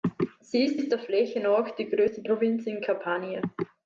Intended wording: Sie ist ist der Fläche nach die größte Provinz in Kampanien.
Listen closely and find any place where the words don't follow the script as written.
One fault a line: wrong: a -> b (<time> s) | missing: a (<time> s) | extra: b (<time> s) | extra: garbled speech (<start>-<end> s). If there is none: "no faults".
no faults